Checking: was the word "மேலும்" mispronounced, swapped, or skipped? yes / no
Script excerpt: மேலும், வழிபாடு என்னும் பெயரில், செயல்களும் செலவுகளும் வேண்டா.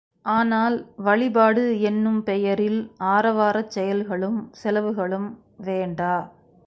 yes